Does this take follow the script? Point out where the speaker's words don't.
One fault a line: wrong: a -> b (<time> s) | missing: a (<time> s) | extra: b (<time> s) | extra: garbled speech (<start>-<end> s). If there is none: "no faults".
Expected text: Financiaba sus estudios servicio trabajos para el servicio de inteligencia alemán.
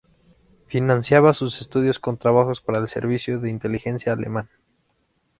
wrong: servicio -> con (2.0 s)